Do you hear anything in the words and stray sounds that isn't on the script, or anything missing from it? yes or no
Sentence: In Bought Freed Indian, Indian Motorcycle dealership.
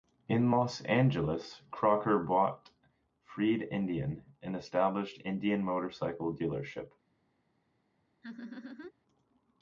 yes